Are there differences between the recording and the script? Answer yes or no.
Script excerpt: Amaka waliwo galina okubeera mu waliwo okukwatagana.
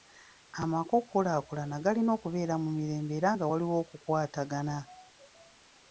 yes